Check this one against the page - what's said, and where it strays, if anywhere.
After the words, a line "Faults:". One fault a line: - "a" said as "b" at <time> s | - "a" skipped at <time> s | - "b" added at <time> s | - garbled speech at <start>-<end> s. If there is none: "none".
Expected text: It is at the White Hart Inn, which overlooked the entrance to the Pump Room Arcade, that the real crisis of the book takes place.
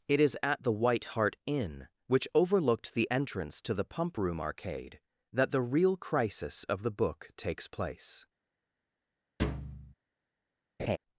It is at the White Hart Inn, which overlooked the entrance to the Pump Room Arcade, that the real crisis of the book takes place.
Faults:
none